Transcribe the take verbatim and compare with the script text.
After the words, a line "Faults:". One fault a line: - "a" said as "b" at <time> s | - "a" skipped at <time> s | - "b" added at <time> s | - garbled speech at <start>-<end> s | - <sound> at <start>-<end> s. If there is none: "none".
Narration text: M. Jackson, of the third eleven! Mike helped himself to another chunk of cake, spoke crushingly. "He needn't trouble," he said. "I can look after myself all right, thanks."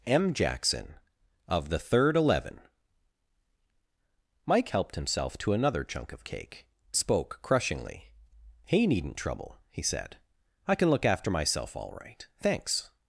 M. Jackson, of the third eleven! Mike helped himself to another chunk of cake, spoke crushingly. "He needn't trouble," he said. "I can look after myself all right, thanks."
Faults:
none